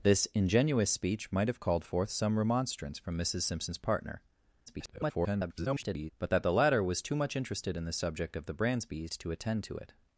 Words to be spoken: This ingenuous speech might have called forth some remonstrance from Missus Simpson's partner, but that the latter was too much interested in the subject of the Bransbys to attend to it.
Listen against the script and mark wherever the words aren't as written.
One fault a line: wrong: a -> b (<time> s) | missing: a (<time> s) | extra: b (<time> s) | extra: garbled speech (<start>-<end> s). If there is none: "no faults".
extra: garbled speech (4.7-6.1 s)